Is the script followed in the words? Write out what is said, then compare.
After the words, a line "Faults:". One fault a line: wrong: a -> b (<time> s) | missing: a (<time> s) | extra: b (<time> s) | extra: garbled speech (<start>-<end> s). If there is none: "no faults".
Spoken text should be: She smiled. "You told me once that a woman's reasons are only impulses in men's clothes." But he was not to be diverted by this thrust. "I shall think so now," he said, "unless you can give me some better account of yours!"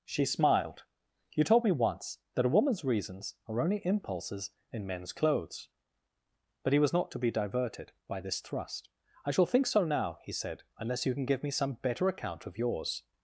She smiled. "You told me once that a woman's reasons are only impulses in men's clothes." But he was not to be diverted by this thrust. "I shall think so now," he said, "unless you can give me some better account of yours!"
Faults:
no faults